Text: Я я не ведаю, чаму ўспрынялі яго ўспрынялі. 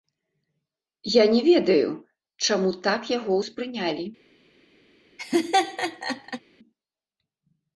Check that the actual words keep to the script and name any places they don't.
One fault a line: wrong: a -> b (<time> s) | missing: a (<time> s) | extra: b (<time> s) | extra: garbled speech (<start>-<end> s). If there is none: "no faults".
missing: я (1.2 s)
wrong: ўспрынялі -> так (2.9 s)